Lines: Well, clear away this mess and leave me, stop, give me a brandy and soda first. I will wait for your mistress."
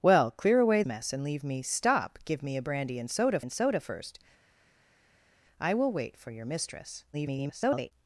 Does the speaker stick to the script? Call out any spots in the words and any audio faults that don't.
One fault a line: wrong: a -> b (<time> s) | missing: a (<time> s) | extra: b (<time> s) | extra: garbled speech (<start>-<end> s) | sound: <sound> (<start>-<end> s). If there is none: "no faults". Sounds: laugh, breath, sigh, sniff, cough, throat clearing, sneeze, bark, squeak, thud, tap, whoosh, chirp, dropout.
missing: this (0.8 s)
extra: and soda (3.4 s)
extra: garbled speech (7.1-7.9 s)